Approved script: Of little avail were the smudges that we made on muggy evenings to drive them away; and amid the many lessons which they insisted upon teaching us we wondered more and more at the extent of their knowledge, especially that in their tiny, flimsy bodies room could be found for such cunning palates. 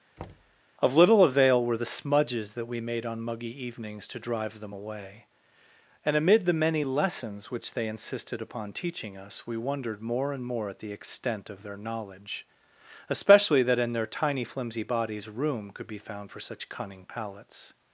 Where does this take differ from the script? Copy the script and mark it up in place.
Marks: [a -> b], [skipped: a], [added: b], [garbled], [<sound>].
[thud] Of little avail were the smudges that we made on muggy evenings to drive them away; and amid the many lessons which they insisted upon teaching us we wondered more and more at the extent of their knowledge, especially that in their tiny, flimsy bodies room could be found for such cunning palates.